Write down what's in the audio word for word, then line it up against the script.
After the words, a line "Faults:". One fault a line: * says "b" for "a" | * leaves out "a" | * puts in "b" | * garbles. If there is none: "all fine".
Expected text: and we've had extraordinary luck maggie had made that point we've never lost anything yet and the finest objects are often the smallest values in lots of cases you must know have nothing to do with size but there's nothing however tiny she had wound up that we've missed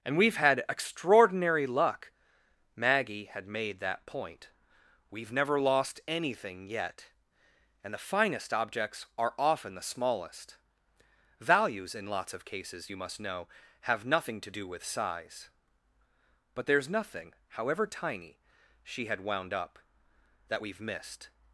and we've had extraordinary luck maggie had made that point we've never lost anything yet and the finest objects are often the smallest values in lots of cases you must know have nothing to do with size but there's nothing however tiny she had wound up that we've missed
Faults:
all fine